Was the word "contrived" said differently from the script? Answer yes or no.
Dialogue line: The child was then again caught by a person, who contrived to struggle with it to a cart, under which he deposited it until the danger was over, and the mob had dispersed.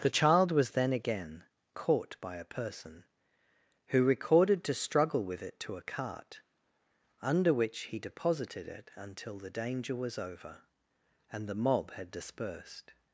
yes